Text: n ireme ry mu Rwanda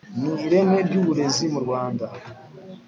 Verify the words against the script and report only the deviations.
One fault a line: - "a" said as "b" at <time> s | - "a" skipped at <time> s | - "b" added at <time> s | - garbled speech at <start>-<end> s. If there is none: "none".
- "uburezi" added at 1.0 s